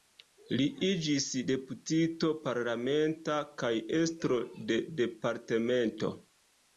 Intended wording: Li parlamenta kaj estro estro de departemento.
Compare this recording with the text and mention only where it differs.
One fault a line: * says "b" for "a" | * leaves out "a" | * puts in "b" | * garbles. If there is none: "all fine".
* puts in "iĝis deputito"
* leaves out "estro"